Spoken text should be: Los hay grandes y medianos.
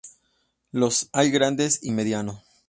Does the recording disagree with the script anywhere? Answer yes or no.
no